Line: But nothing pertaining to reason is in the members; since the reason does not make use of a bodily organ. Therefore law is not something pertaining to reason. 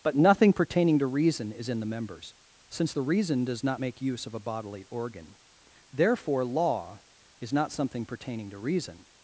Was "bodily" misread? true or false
false